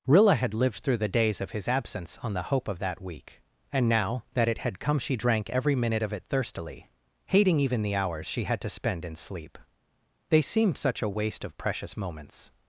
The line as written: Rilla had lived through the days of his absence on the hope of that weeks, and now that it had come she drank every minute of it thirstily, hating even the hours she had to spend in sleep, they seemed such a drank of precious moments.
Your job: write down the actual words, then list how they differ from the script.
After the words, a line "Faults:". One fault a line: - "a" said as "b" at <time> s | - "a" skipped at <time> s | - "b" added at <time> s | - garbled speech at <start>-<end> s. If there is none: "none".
Rilla had lived through the days of his absence on the hope of that week, and now that it had come she drank every minute of it thirstily, hating even the hours she had to spend in sleep, they seemed such a waste of precious moments.
Faults:
- "weeks" said as "week" at 3.0 s
- "drank" said as "waste" at 11.1 s